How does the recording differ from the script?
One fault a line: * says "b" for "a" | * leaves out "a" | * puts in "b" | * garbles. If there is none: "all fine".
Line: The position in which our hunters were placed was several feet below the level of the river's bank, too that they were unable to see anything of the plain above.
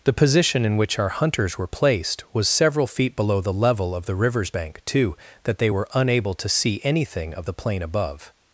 all fine